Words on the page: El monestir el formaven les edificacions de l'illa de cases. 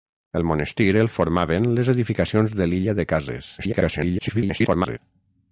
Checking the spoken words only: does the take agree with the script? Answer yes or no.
no